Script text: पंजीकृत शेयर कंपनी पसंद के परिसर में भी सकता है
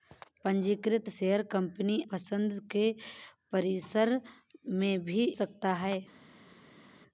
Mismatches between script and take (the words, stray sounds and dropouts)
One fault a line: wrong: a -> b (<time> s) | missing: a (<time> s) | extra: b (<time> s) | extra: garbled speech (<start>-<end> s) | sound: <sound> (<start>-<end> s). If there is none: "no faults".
no faults